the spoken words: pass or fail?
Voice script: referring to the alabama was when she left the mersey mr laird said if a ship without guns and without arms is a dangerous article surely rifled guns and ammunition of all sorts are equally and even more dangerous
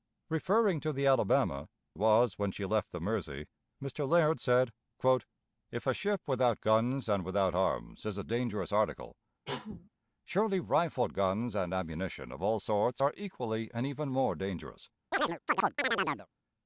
pass